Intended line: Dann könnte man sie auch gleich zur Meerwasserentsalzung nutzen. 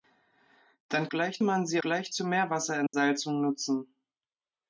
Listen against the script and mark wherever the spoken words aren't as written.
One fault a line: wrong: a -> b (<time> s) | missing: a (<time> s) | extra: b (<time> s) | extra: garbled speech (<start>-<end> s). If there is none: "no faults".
wrong: könnte -> gleich (1.1 s)
missing: auch (1.8 s)